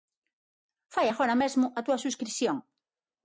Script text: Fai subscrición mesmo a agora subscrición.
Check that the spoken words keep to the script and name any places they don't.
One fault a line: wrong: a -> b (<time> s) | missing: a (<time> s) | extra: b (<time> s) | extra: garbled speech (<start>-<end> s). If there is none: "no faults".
wrong: subscrición -> agora (1.1 s)
wrong: agora -> túa (1.9 s)